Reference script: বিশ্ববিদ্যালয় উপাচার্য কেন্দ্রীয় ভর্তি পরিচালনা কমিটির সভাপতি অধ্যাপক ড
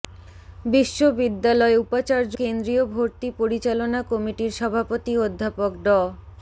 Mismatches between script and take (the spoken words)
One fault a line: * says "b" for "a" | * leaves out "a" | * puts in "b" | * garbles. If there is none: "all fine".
all fine